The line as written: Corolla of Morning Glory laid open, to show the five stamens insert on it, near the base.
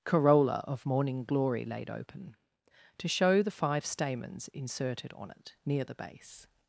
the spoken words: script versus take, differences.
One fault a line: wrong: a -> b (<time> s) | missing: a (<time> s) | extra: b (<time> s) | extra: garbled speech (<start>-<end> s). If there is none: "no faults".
wrong: insert -> inserted (4.5 s)